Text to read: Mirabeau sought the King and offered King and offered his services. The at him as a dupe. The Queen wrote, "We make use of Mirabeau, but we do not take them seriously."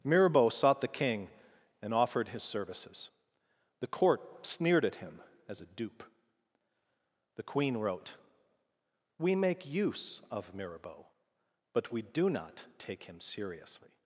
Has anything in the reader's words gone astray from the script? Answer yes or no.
yes